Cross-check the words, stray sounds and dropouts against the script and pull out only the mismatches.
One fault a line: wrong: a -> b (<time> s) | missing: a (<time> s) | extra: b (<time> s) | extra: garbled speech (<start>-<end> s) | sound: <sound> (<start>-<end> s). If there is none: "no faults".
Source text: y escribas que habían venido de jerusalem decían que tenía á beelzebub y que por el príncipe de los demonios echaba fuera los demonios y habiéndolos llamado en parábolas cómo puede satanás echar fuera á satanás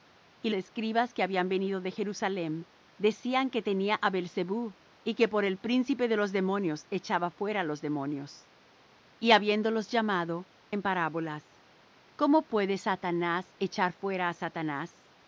no faults